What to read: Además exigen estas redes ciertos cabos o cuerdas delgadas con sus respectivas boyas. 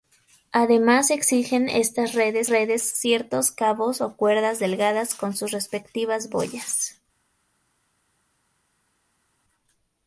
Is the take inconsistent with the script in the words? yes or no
yes